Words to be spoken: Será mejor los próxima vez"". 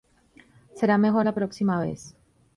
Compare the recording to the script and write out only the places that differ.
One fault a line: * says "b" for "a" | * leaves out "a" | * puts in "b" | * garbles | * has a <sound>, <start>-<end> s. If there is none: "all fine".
* says "la" for "los"